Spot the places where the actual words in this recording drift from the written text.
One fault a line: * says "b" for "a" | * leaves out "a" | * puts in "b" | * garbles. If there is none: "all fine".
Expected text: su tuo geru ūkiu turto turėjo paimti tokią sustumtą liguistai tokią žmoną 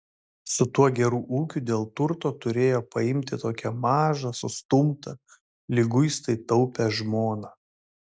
* puts in "dėl"
* puts in "mažą"
* says "taupią" for "tokią"